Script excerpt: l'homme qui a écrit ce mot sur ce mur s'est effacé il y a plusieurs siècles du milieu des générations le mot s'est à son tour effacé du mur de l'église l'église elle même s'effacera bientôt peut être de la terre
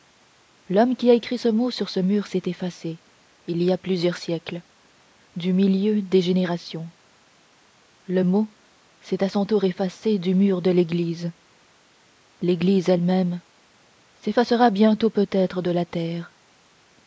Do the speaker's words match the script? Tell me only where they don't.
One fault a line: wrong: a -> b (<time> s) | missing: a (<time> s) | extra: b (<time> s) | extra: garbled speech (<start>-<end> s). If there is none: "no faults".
no faults